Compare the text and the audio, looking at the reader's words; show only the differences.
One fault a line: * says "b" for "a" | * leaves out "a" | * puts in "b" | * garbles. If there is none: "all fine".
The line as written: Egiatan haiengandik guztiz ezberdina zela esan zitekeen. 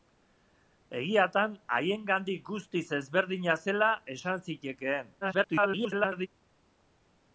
* garbles